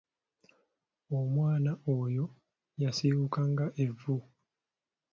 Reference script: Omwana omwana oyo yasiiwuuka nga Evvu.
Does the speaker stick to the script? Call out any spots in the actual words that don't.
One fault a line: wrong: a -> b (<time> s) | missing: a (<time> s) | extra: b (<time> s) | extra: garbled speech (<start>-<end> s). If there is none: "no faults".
missing: omwana (1.7 s)